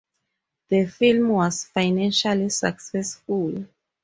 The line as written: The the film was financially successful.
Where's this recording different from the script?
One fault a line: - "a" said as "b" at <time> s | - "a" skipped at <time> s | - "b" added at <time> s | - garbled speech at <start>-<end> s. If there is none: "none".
- "the" skipped at 0.9 s